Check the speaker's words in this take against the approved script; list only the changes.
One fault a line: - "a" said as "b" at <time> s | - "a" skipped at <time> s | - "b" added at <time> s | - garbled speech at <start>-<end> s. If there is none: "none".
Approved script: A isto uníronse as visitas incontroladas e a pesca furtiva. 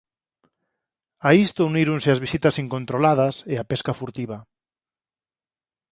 none